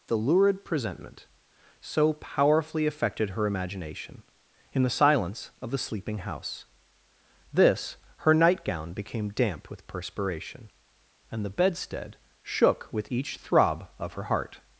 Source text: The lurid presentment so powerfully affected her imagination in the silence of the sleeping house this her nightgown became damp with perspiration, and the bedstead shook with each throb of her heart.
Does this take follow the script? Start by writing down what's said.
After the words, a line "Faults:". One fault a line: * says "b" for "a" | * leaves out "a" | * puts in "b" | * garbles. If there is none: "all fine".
The lurid presentment so powerfully affected her imagination in the silence of the sleeping house this her nightgown became damp with perspiration, and the bedstead shook with each throb of her heart.
Faults:
all fine